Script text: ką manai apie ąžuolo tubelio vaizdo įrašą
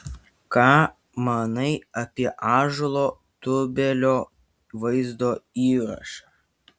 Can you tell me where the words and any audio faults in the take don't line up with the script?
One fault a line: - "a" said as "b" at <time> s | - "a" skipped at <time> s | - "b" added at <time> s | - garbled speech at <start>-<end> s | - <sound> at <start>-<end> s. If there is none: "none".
none